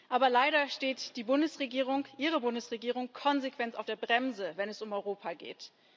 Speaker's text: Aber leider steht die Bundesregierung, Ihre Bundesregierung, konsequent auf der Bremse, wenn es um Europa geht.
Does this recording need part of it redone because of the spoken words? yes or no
no